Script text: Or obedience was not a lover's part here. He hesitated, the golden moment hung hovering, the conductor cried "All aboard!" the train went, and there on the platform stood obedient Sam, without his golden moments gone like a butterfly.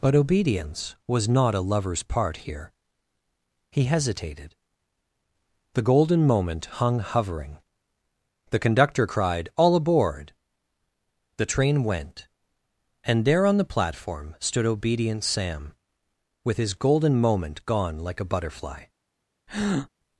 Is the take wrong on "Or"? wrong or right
wrong